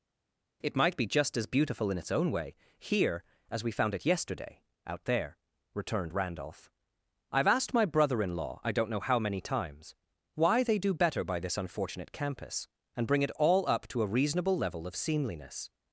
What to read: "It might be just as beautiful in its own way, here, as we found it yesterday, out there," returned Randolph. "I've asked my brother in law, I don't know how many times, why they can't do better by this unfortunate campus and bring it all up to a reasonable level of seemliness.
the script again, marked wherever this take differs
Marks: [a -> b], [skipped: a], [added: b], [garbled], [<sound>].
"It might be just as beautiful in its own way, here, as we found it yesterday, out there," returned Randolph. "I've asked my brother in law, I don't know how many times, why they [skipped: can't] do better by this unfortunate campus and bring it all up to a reasonable level of seemliness.